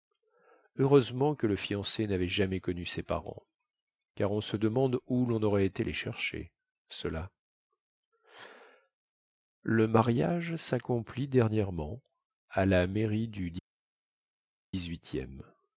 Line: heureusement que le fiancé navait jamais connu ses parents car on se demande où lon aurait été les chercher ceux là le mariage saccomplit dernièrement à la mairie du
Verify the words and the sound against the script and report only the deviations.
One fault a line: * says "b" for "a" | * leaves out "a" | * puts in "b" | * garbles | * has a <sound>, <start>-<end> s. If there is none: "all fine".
all fine